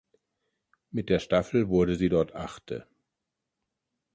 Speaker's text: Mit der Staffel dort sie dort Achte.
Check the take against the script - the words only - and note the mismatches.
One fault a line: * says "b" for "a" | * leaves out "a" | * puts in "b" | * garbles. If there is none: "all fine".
* says "wurde" for "dort"